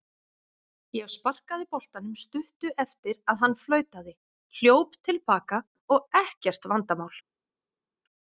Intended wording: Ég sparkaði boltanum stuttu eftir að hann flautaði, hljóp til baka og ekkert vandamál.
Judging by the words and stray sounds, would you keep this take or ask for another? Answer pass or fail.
pass